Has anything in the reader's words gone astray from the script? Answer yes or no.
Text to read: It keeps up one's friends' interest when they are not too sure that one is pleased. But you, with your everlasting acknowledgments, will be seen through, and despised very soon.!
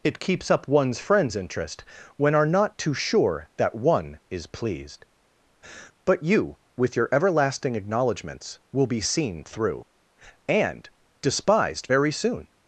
yes